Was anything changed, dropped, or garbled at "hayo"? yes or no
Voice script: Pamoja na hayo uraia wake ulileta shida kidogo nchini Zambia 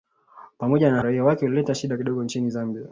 yes